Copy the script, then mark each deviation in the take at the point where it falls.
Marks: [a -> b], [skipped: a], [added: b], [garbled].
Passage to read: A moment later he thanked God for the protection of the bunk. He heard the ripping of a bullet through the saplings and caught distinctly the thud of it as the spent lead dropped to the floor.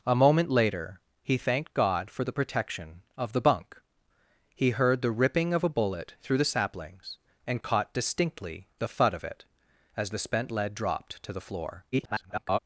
A moment later he thanked God for the protection of the bunk. He heard the ripping of a bullet through the saplings and caught distinctly the thud of it as the spent lead dropped to the floor. [garbled]